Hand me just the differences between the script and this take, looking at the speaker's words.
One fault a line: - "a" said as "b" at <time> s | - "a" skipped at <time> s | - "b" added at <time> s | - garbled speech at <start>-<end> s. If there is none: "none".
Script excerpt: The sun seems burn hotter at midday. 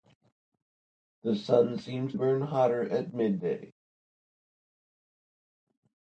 none